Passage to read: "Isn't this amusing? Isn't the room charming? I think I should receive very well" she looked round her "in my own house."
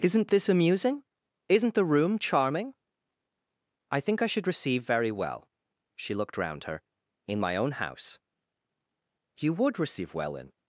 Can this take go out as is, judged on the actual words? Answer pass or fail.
fail